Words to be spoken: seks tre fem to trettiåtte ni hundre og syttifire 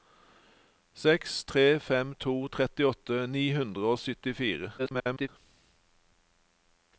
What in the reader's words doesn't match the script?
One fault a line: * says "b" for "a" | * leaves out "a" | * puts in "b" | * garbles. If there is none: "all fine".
* garbles